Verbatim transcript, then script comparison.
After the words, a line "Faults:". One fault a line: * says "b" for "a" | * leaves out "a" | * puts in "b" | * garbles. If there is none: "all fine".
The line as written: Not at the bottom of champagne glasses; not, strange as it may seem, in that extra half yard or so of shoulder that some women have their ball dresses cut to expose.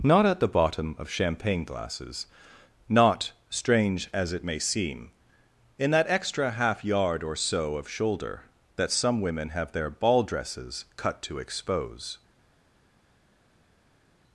Not at the bottom of champagne glasses; not, strange as it may seem, in that extra half yard or so of shoulder that some women have their ball dresses cut to expose.
Faults:
all fine